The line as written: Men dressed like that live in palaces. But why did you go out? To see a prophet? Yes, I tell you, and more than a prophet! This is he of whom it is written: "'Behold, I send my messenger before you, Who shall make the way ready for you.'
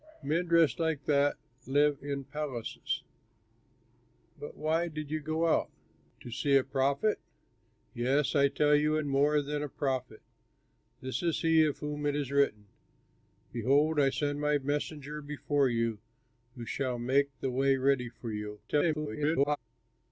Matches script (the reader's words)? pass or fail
fail